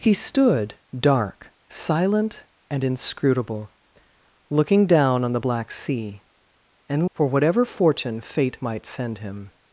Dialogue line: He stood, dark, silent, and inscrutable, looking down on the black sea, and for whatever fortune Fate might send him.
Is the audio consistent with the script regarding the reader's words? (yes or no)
yes